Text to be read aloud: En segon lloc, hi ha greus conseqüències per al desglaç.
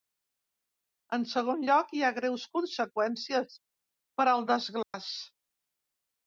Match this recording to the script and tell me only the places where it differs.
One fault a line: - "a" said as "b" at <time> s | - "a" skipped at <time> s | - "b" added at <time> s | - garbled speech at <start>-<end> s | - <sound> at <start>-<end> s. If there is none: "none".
- dropout at 4.8-4.9 s